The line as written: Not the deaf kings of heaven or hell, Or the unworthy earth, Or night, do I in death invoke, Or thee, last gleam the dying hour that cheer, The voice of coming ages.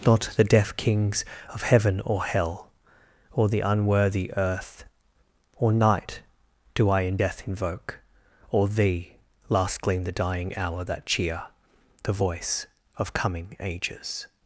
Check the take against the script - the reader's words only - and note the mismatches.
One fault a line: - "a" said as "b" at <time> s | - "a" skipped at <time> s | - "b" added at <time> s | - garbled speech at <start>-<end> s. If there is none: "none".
none